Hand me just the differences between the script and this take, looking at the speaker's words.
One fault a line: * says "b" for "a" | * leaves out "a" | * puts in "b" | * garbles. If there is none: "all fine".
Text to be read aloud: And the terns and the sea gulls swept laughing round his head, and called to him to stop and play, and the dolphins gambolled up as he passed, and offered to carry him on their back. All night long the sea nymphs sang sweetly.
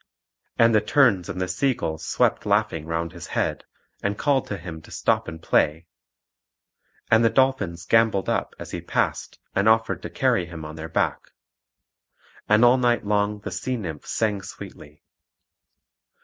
* puts in "And"